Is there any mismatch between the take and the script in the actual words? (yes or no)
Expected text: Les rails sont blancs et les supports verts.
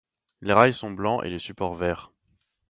no